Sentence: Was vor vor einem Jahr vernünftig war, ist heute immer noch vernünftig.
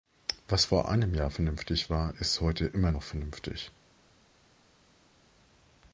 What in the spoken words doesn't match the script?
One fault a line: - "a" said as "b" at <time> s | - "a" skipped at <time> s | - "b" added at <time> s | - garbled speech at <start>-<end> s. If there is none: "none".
- "vor" skipped at 0.9 s